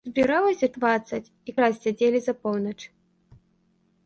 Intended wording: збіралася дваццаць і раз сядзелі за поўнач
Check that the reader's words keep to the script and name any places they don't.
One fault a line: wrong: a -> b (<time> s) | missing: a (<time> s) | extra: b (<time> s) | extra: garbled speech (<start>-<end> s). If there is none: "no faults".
no faults